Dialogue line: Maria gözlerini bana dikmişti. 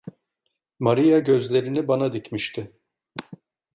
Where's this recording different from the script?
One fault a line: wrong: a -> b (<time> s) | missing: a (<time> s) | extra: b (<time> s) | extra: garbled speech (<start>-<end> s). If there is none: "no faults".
no faults